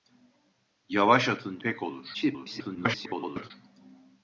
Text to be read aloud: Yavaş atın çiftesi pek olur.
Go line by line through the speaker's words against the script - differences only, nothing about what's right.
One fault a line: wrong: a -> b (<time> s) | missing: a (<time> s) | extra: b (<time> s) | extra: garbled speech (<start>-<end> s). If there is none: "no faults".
missing: çiftesi (1.6 s)
extra: garbled speech (2.1-3.5 s)